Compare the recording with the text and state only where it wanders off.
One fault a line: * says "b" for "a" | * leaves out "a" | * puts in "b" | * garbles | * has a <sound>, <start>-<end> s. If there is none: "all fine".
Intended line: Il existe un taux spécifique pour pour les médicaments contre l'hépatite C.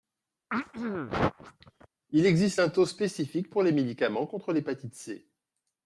* has a throat clearing, 0.5-1.9 s
* leaves out "pour"